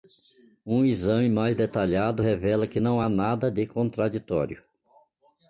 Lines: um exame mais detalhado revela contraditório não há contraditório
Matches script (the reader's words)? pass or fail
fail